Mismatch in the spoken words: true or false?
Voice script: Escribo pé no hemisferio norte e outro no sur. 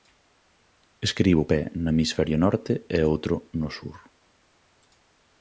false